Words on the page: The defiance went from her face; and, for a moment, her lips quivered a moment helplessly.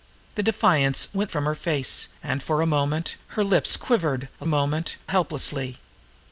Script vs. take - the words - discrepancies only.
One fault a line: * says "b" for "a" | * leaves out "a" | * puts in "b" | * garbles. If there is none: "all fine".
all fine